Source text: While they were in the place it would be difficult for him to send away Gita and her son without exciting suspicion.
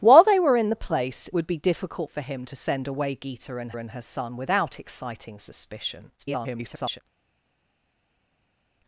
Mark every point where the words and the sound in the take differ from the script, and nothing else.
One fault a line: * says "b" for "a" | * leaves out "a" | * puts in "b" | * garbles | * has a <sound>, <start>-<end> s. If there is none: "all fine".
* leaves out "it"
* puts in "and"
* garbles